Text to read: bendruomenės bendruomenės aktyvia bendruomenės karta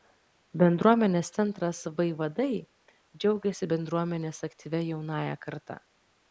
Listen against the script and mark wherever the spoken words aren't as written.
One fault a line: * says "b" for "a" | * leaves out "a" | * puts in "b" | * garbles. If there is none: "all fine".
* puts in "centras vaivadai džiaugiasi"
* says "jaunąja" for "bendruomenės"